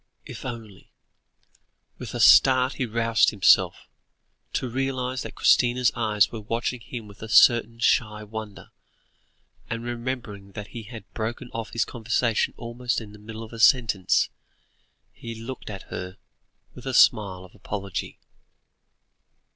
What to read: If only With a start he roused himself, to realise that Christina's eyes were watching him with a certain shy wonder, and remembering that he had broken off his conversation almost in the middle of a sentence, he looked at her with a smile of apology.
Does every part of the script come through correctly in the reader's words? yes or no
yes